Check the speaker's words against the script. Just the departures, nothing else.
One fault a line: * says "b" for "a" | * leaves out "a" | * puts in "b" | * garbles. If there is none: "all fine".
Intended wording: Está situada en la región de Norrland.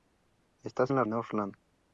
* leaves out "situada"
* leaves out "región de"